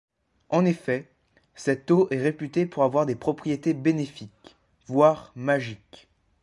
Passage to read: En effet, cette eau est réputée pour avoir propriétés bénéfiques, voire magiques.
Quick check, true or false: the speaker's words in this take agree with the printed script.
false